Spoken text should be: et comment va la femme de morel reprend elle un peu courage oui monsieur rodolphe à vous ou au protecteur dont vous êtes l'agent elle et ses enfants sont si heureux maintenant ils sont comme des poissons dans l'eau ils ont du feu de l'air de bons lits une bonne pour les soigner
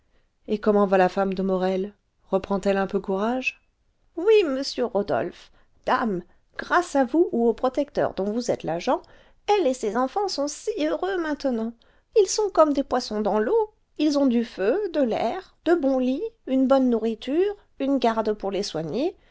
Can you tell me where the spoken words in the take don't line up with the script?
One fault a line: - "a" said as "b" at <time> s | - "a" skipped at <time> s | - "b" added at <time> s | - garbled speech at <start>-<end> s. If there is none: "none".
- "dame grâce" added at 5.8 s
- "nourriture une garde" added at 16.9 s